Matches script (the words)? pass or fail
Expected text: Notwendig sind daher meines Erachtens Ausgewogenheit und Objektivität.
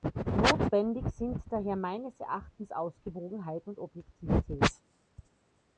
pass